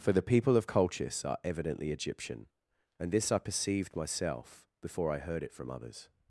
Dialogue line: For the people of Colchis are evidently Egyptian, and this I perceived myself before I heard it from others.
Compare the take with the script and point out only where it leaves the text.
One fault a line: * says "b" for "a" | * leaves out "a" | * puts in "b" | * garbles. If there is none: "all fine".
all fine